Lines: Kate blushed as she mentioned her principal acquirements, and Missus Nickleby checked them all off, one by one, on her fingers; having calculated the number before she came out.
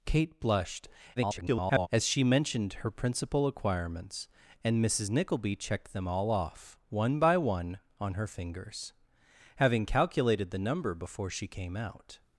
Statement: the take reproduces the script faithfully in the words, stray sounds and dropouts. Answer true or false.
false